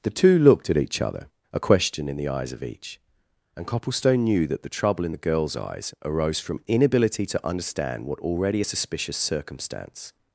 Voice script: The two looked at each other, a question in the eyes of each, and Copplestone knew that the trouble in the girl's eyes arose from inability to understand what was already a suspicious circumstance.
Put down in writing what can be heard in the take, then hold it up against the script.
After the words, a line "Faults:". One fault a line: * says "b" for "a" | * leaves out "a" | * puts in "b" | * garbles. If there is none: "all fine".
The two looked at each other, a question in the eyes of each, and Copplestone knew that the trouble in the girl's eyes arose from inability to understand what already a suspicious circumstance.
Faults:
* leaves out "was"